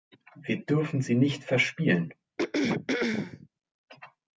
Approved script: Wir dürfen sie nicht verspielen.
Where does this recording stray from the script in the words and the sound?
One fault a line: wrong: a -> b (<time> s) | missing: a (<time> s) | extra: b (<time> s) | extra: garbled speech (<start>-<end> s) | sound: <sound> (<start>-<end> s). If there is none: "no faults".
sound: throat clearing (2.4-3.5 s)